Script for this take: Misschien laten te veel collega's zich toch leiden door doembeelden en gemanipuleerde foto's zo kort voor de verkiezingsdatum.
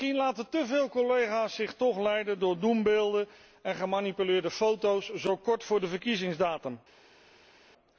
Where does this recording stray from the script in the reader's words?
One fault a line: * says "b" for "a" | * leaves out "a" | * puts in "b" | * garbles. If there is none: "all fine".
all fine